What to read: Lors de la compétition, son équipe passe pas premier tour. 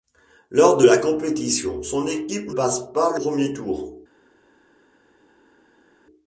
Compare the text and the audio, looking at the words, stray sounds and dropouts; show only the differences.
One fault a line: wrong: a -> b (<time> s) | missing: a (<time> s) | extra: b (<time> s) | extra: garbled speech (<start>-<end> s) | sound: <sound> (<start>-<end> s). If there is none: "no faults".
no faults